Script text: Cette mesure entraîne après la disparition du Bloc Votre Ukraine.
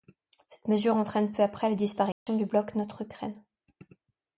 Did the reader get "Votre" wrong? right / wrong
wrong